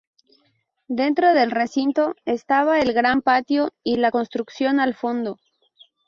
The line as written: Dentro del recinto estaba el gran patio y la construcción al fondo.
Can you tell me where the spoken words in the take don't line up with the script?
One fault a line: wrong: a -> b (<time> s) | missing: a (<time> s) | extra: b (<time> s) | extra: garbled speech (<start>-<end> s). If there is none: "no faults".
no faults